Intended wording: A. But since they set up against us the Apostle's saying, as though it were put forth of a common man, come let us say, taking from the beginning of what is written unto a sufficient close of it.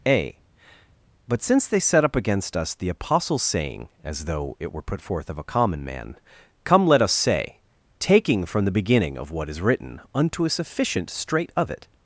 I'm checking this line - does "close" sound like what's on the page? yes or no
no